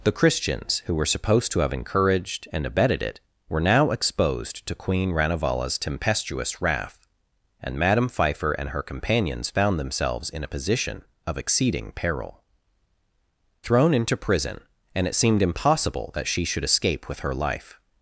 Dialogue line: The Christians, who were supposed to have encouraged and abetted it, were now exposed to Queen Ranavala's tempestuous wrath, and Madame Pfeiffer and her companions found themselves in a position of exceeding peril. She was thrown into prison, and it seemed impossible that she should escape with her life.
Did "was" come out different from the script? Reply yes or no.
yes